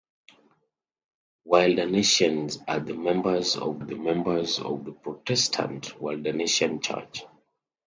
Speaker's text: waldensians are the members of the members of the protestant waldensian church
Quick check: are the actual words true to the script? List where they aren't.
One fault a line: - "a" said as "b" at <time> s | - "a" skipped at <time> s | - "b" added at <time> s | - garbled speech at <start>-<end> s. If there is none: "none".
none